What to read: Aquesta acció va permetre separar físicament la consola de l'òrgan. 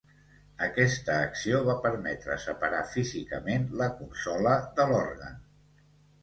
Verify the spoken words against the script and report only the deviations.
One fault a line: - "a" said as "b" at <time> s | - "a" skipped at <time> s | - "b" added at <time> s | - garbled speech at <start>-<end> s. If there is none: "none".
none